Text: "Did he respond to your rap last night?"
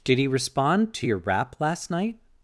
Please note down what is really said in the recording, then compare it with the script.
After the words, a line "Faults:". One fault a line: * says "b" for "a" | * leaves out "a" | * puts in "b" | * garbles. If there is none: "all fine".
"Did he respond to your rap last night?"
Faults:
all fine